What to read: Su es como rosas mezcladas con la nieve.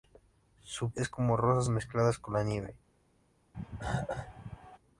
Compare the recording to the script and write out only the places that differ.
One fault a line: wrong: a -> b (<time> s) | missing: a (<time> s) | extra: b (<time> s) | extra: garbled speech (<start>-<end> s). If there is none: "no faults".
no faults